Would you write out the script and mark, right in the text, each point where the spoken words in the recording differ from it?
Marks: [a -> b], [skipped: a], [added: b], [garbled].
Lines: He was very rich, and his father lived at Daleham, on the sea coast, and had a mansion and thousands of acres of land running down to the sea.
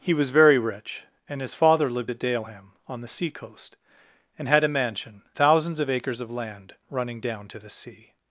He was very rich, and his father lived at Daleham, on the sea coast, and had a mansion [skipped: and] thousands of acres of land running down to the sea.